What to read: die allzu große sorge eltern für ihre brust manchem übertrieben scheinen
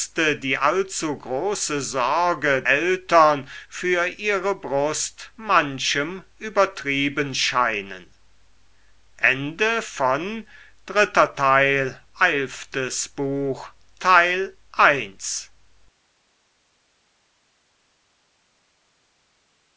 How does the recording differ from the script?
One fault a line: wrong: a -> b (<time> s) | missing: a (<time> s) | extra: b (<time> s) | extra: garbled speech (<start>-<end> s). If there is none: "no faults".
no faults